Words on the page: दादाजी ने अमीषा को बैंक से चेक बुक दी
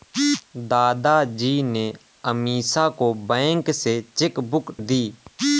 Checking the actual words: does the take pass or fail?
pass